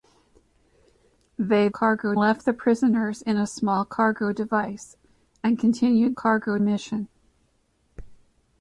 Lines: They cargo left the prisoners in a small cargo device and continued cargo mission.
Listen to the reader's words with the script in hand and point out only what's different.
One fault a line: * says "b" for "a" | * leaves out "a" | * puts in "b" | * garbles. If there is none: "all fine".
all fine